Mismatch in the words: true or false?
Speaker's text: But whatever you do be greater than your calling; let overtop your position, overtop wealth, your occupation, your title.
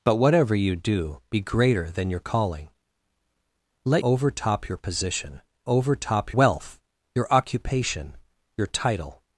false